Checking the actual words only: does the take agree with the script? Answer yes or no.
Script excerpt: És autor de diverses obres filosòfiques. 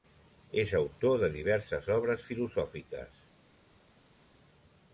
yes